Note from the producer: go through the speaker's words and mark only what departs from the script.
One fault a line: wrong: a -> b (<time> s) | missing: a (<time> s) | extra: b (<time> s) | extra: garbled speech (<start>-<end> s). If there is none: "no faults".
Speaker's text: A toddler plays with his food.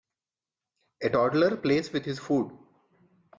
no faults